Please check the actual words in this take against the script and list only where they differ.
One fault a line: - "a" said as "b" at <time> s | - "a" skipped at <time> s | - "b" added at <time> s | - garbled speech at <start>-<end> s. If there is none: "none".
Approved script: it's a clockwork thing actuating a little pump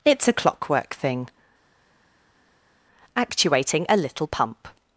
none